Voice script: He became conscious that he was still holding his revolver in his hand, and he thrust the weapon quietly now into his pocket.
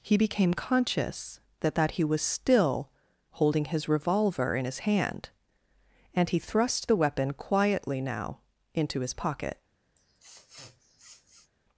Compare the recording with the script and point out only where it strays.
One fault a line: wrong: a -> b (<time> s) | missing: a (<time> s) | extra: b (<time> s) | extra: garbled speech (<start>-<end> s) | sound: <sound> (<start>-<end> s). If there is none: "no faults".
extra: that (1.8 s)
sound: sniff (10.0-11.5 s)